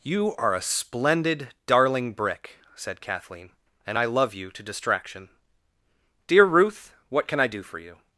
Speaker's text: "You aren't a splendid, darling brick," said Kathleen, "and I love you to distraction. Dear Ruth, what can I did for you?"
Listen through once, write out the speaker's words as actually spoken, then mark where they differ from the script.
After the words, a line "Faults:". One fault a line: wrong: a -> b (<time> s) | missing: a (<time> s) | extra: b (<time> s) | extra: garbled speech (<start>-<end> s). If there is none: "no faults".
"You are a splendid, darling brick," said Kathleen, "and I love you to distraction. Dear Ruth, what can I do for you?"
Faults:
wrong: aren't -> are (0.4 s)
wrong: did -> do (7.5 s)